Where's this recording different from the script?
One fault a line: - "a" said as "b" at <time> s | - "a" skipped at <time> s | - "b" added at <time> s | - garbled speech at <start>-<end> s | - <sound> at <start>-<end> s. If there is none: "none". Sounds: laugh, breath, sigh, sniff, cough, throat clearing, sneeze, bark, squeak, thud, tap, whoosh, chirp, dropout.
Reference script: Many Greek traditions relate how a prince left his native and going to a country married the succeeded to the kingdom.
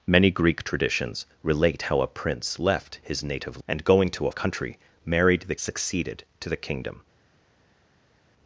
none